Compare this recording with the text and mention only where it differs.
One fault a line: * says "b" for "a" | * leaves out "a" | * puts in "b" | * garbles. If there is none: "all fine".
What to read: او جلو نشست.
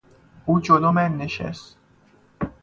* puts in "من"